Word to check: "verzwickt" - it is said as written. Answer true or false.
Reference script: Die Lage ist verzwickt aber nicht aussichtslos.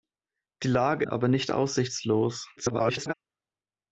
false